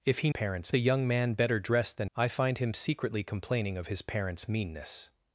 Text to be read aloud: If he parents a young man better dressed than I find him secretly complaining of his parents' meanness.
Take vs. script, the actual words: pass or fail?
pass